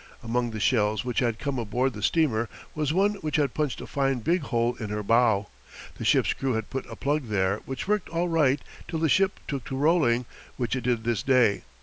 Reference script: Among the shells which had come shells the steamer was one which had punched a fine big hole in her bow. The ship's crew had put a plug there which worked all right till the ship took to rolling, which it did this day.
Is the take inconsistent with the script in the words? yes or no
yes